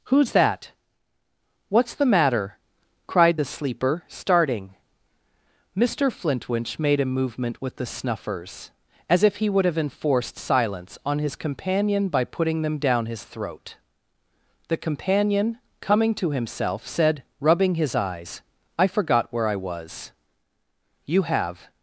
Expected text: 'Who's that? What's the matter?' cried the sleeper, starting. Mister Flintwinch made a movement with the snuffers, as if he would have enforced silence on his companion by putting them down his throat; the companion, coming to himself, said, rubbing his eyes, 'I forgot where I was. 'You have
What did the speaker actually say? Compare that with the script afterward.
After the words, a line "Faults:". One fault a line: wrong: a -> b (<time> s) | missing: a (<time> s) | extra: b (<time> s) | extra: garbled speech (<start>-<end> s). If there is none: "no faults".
'Who's that? What's the matter?' cried the sleeper, starting. Mister Flintwinch made a movement with the snuffers, as if he would have enforced silence on his companion by putting them down his throat; the companion, coming to himself, said, rubbing his eyes, 'I forgot where I was. 'You have
Faults:
no faults